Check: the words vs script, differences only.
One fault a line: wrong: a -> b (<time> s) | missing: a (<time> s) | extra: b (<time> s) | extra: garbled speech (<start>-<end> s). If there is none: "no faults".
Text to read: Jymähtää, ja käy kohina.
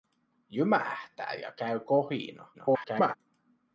extra: garbled speech (2.5-3.2 s)